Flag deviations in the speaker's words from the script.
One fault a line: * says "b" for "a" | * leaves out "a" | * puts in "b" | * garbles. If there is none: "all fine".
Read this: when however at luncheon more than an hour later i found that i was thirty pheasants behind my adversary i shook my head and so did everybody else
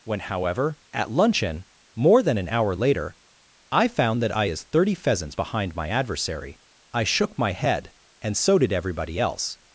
* says "is" for "was"